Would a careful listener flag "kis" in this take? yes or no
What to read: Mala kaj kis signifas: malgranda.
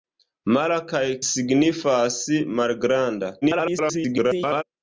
yes